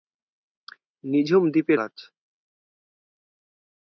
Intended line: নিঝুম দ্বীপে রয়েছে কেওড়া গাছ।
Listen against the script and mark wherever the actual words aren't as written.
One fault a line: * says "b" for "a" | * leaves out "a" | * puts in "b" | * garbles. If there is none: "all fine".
* leaves out "রয়েছে কেওড়া"